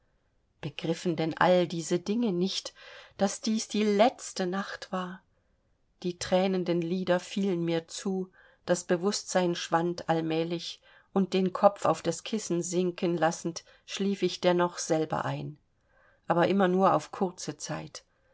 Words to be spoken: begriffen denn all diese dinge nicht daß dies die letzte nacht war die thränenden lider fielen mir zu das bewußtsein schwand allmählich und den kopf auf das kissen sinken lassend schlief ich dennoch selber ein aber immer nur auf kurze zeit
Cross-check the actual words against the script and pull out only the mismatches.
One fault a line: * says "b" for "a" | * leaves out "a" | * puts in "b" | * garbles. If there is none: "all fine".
all fine